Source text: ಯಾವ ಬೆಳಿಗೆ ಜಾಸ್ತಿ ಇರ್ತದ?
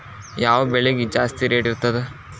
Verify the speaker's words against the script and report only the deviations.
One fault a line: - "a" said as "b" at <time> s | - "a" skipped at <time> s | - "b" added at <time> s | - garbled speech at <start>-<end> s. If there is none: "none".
- "ರೇಟ್" added at 1.5 s